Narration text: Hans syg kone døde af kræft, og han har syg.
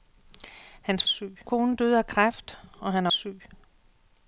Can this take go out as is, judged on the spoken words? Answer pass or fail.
pass